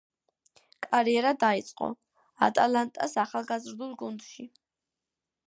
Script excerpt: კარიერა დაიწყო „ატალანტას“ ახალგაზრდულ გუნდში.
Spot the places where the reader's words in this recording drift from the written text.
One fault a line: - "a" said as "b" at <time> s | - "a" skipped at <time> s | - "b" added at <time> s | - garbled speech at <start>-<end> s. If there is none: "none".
none